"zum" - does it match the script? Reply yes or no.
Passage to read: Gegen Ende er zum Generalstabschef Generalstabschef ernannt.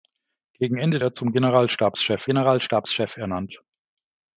yes